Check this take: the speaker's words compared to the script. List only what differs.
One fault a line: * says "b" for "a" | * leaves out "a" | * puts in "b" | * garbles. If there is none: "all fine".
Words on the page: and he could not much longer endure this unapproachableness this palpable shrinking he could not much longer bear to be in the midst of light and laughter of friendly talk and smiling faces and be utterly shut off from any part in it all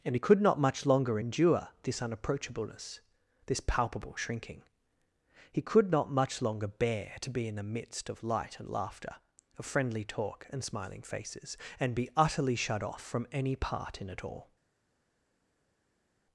all fine